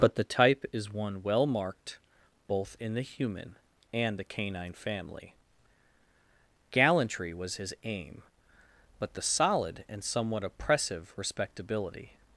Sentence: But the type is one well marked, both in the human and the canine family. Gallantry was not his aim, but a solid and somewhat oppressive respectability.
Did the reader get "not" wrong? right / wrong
wrong